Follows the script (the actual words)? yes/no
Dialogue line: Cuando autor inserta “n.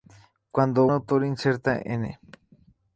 yes